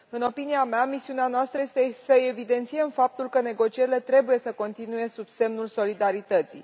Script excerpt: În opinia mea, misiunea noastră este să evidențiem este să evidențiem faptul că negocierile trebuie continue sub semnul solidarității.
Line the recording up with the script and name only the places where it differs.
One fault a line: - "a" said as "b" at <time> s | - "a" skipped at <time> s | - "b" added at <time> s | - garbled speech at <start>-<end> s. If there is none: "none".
- "este să evidențiem" skipped at 2.9 s
- "să" added at 4.4 s